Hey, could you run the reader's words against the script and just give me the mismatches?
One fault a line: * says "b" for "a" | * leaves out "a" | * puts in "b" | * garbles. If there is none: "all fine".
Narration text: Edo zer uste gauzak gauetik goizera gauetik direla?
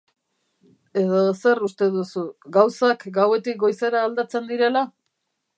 * puts in "duzu"
* says "aldatzen" for "gauetik"